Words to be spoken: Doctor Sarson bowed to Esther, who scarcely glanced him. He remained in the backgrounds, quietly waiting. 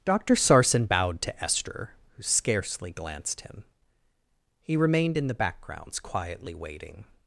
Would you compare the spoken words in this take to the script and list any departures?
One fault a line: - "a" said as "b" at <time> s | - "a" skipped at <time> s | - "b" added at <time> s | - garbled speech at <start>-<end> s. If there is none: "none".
none